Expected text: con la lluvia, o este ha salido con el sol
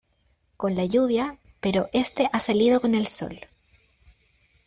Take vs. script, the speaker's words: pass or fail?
fail